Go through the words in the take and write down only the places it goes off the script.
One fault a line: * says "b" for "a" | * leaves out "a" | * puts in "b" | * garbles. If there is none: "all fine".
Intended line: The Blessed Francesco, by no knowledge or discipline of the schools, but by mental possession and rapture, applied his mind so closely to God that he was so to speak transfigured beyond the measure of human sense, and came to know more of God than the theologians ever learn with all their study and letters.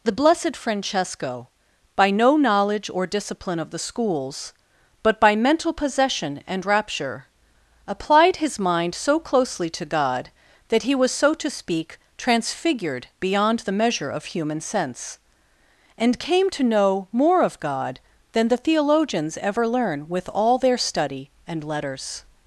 all fine